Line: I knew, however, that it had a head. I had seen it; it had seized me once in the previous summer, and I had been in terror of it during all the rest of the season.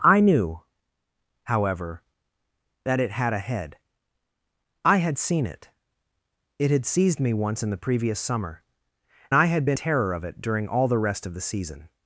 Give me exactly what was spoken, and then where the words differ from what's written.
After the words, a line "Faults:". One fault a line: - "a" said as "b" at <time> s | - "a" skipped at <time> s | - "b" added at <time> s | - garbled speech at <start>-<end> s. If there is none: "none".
I knew, however, that it had a head. I had seen it; it had seized me once in the previous summer, I had been terror of it during all the rest of the season.
Faults:
- "and" skipped at 8.6 s
- "in" skipped at 9.8 s